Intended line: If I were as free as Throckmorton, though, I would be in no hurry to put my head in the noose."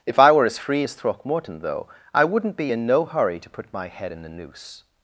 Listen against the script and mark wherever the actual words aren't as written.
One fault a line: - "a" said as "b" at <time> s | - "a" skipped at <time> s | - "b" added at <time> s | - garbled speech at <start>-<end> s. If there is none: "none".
- "would" said as "wouldn't" at 2.2 s